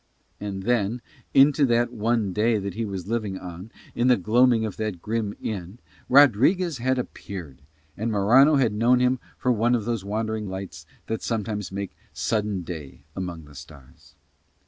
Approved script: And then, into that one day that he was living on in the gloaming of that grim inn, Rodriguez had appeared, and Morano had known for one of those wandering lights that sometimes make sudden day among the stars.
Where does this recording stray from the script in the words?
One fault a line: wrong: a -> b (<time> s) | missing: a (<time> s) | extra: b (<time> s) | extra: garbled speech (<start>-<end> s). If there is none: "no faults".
extra: him (9.0 s)